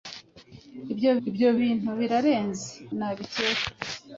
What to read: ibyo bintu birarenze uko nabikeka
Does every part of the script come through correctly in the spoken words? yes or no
no